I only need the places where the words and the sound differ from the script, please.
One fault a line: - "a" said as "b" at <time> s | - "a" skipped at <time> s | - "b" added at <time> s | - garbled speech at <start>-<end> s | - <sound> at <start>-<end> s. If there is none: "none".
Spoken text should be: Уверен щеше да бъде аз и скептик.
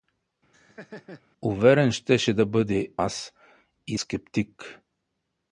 - laugh at 0.5-1.2 s